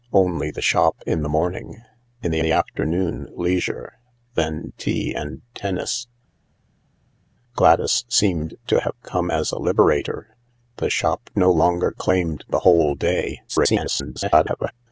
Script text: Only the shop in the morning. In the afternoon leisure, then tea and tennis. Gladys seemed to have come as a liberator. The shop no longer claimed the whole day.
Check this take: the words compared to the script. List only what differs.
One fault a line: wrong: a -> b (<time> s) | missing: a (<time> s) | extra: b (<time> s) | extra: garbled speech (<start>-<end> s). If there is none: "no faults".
extra: the (2.4 s)
extra: garbled speech (13.5-14.7 s)